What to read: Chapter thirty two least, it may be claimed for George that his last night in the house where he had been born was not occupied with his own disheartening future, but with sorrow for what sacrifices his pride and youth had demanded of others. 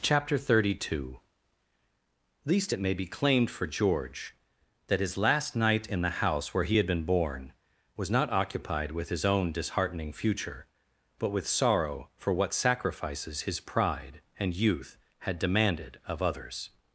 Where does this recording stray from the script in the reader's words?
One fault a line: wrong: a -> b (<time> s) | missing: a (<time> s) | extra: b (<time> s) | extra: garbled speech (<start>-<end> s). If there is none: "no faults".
no faults